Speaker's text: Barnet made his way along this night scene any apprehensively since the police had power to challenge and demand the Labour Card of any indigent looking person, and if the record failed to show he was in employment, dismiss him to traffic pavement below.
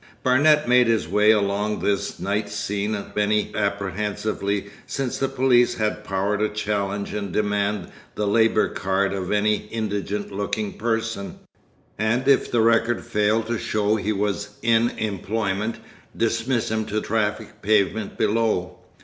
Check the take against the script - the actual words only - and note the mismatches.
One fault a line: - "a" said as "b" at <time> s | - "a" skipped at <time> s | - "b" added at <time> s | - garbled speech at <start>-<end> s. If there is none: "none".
none